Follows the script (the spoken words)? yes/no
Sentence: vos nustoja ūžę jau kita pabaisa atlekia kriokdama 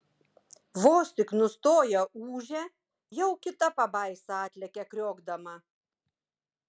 no